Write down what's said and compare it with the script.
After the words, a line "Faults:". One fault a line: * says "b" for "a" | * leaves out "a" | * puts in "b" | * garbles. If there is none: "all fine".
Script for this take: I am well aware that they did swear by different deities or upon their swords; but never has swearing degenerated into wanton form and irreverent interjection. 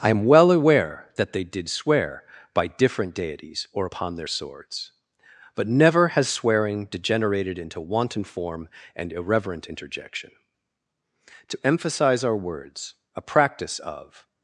I am well aware that they did swear by different deities or upon their swords; but never has swearing degenerated into wanton form and irreverent interjection. To emphasize our words a practice of
Faults:
* puts in "To emphasize our words a practice of"